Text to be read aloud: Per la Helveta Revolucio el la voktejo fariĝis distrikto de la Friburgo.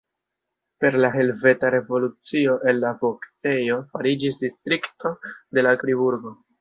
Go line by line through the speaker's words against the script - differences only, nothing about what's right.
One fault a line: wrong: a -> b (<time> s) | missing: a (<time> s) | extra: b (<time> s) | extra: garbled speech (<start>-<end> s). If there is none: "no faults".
no faults